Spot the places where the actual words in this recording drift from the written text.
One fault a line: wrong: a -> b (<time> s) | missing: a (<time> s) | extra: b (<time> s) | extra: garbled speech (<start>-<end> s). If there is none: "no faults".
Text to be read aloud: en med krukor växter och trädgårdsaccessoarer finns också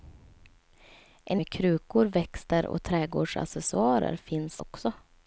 no faults